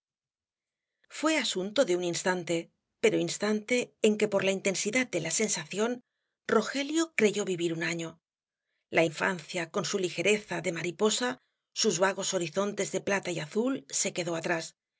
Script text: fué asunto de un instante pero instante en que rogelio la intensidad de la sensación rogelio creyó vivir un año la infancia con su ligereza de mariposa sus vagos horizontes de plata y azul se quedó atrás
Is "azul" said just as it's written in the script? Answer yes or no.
yes